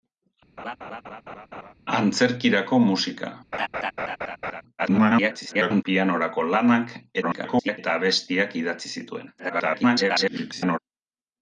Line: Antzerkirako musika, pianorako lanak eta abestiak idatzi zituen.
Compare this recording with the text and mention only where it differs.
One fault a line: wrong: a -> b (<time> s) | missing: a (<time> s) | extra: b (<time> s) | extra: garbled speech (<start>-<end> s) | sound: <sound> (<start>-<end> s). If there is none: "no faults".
sound: laugh (0.6-1.7 s)
sound: laugh (3.5-4.6 s)
extra: garbled speech (4.8-5.8 s)
extra: garbled speech (7.2-7.8 s)
extra: garbled speech (9.4-10.8 s)